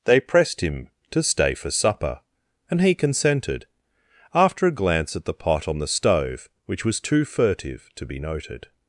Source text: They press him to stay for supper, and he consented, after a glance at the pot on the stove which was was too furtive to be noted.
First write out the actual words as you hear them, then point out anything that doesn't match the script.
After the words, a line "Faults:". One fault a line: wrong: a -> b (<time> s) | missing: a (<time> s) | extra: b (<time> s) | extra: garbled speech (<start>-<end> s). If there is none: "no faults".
They pressed him to stay for supper, and he consented, after a glance at the pot on the stove which was too furtive to be noted.
Faults:
wrong: press -> pressed (0.2 s)
missing: was (7.0 s)